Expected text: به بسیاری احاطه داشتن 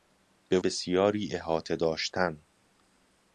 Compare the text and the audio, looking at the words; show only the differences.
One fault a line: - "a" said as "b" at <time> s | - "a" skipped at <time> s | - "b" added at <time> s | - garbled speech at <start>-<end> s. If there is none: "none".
none